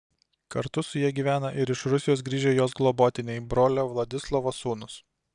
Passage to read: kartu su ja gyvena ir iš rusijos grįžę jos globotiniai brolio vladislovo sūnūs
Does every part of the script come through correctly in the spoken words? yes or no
yes